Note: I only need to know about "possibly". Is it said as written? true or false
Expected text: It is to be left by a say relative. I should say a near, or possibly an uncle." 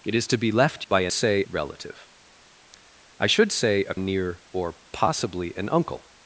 true